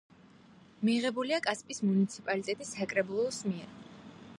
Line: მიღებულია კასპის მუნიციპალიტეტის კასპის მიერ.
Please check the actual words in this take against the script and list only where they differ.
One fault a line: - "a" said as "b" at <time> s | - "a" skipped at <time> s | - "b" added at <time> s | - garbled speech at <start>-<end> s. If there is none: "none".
- "კასპის" said as "საკრებულოს" at 2.8 s